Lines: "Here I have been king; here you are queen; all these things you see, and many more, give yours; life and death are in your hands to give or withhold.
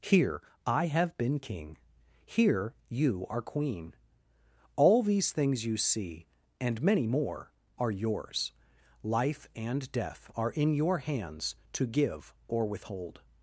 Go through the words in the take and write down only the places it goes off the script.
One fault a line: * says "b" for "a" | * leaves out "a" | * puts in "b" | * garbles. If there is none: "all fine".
* says "are" for "give"